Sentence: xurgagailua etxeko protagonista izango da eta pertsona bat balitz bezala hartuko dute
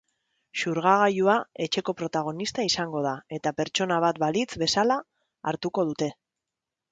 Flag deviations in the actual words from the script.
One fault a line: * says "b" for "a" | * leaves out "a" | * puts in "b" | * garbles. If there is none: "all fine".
all fine